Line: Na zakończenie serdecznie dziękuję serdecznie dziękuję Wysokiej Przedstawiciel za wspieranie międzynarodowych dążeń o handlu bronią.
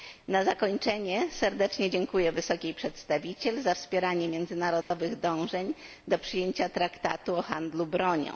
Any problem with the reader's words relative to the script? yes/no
yes